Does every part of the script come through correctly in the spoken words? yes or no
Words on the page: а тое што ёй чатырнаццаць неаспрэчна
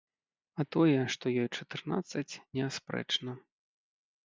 yes